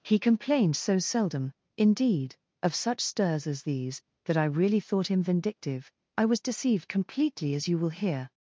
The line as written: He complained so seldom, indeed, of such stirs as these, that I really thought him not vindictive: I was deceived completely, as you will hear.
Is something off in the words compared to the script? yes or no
yes